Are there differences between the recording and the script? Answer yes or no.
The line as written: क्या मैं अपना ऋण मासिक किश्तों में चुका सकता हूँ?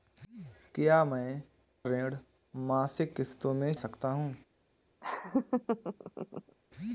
yes